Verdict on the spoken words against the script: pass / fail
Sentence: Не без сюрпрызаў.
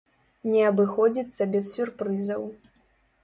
fail